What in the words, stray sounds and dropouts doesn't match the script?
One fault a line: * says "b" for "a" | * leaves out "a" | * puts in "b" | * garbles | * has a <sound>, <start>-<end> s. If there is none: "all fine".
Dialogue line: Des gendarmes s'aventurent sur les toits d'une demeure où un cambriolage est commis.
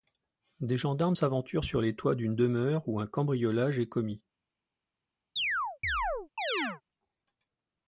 * has a chirp, 5.4-6.8 s